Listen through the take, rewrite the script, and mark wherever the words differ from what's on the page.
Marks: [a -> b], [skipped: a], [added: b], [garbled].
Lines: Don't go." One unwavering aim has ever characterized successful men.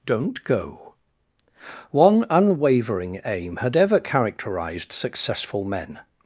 Don't go." One unwavering aim [has -> had] ever characterized successful men.